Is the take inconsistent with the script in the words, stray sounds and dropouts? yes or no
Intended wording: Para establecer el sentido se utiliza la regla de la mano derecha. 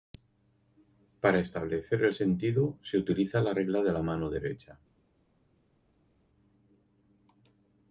no